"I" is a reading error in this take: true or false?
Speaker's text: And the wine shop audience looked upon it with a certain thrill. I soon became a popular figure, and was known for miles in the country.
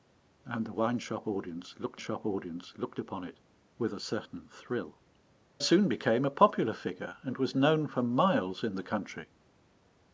true